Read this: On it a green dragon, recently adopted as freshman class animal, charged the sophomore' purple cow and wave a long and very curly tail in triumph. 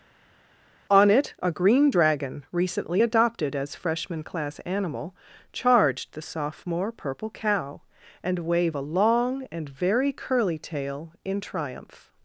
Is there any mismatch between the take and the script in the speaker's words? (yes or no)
no